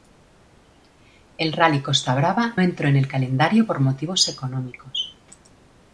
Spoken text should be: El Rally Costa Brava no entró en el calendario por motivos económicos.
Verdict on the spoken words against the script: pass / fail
fail